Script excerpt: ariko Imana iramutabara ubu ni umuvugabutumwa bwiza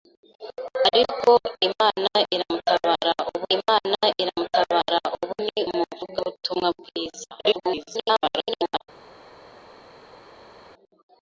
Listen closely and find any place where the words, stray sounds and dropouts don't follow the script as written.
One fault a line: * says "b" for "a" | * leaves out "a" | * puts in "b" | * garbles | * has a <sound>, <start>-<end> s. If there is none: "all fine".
* puts in "Imana iramutabara ubu"
* garbles